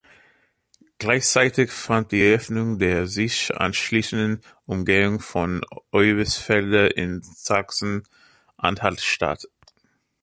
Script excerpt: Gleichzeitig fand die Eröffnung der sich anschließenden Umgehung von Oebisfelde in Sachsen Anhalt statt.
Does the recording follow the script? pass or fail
pass